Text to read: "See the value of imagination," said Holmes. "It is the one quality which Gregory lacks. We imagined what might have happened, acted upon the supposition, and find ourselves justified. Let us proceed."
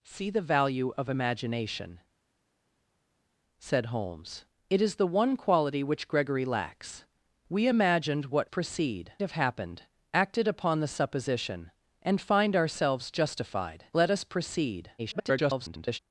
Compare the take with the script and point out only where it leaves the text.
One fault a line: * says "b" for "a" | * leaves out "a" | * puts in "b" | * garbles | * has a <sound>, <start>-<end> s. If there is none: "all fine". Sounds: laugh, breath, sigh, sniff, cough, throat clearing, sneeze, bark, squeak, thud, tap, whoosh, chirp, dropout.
* says "proceed" for "might"
* garbles